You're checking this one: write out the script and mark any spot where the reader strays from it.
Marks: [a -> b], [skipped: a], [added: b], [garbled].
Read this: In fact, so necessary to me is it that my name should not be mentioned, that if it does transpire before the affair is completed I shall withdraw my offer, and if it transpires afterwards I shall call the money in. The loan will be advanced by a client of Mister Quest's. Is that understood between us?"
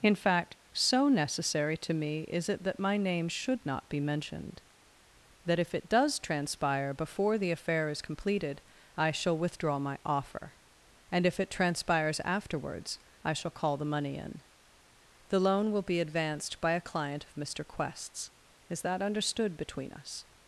In fact, so necessary to me is it that my name should not be mentioned, that if it does transpire before the affair is completed I shall withdraw my offer, and if it transpires afterwards I shall call the money in. The loan will be advanced by a client of Mister Quest's. Is that understood between us?"